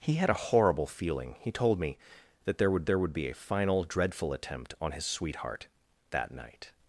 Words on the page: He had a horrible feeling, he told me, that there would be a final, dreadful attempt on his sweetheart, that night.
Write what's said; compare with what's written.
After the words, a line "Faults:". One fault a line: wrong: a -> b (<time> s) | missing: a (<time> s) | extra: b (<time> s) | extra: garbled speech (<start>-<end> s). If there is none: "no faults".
He had a horrible feeling, he told me, that there would there would be a final, dreadful attempt on his sweetheart, that night.
Faults:
extra: there would (2.8 s)